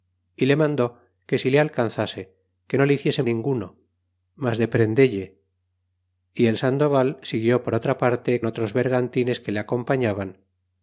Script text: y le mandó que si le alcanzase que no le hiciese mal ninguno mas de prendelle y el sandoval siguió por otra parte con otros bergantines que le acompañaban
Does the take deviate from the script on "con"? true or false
true